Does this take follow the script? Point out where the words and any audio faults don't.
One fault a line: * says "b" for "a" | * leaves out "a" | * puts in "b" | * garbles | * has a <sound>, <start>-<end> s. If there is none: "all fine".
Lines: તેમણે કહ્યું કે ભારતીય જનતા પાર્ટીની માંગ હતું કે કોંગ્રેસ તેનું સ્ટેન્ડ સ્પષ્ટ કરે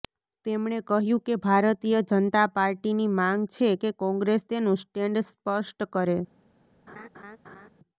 * says "છે" for "હતું"
* has a laugh, 6.9-7.7 s